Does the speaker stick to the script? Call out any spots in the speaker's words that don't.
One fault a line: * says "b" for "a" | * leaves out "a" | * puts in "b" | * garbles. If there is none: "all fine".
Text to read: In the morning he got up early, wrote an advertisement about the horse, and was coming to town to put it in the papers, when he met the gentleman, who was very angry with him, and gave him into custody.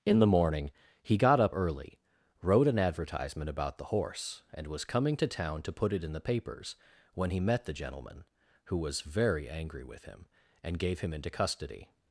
all fine